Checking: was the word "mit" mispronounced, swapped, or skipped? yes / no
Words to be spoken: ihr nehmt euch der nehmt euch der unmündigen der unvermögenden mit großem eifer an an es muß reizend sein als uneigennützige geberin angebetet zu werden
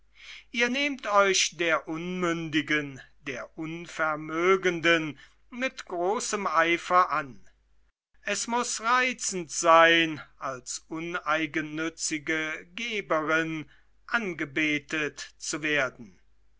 no